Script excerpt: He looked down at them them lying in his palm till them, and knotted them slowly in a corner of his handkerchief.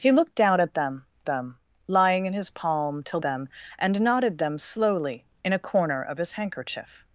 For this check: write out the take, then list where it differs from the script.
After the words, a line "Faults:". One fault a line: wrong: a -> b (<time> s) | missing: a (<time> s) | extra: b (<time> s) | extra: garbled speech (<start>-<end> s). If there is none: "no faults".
He looked down at them them lying in his palm till them, and knotted them slowly in a corner of his handkerchief.
Faults:
no faults